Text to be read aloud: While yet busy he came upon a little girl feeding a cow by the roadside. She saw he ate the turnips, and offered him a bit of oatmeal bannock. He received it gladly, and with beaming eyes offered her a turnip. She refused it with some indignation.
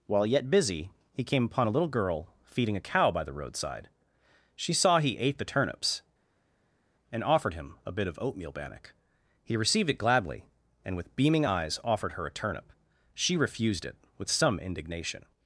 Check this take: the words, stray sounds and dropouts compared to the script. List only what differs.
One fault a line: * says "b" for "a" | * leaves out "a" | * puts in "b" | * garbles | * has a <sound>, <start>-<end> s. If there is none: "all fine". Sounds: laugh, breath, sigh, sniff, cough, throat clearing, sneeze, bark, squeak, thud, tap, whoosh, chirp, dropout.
all fine